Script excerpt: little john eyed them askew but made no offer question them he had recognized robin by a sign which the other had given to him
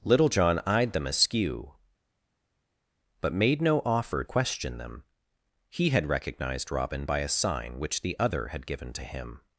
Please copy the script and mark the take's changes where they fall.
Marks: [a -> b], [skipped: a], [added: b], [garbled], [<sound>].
little john eyed them askew but made no offer question them he had recognized robin by a sign which the other had given to him